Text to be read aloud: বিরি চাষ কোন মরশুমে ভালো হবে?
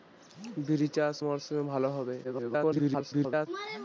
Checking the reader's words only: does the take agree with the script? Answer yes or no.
no